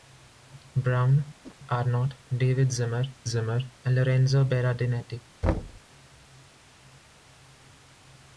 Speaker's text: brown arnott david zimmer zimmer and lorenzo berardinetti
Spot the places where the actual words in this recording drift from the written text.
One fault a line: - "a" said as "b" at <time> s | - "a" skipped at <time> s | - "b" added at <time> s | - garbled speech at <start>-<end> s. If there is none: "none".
none